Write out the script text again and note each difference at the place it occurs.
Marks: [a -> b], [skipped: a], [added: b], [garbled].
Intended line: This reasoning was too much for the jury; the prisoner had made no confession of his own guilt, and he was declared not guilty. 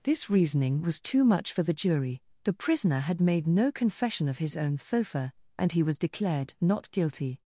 This reasoning was too much for the jury; the prisoner had made no confession of his own [guilt, -> thofa] and he was declared not guilty.